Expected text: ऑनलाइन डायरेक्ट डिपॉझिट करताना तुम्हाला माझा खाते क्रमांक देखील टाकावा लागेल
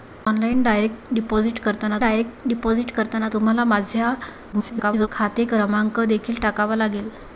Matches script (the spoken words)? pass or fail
fail